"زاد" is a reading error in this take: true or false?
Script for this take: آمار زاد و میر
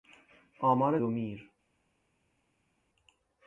true